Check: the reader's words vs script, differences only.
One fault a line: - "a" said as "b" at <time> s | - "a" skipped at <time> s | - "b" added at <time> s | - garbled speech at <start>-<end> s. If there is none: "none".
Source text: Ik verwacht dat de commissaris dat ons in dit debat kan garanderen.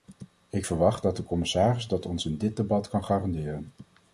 none